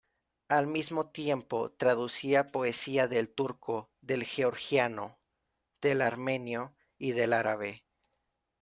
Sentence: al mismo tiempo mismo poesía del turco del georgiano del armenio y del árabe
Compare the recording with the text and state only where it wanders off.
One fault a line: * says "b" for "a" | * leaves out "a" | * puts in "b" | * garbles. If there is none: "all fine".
* says "traducía" for "mismo"